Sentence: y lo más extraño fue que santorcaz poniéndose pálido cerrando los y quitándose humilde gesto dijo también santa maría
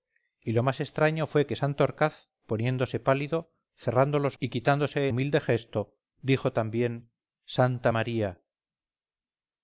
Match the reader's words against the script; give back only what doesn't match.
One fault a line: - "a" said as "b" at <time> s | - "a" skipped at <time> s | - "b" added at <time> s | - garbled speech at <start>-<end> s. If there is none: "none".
none